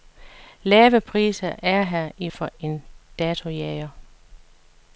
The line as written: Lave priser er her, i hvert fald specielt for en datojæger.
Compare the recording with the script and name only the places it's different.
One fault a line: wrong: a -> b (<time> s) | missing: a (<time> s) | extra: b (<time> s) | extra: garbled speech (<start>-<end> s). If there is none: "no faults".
missing: hvert fald specielt (2.3 s)